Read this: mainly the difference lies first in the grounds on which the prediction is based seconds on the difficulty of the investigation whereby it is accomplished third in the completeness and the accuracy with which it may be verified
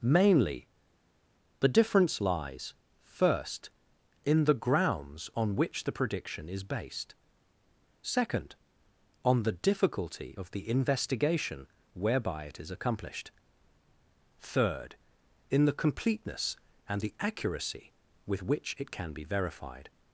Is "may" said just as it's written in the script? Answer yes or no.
no